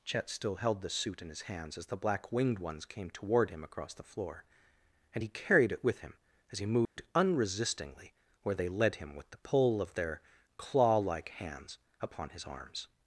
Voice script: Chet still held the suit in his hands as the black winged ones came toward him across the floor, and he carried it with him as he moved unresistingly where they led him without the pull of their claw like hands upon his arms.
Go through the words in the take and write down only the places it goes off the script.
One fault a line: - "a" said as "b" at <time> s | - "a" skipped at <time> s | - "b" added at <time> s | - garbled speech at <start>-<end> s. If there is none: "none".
- "without" said as "with" at 9.2 s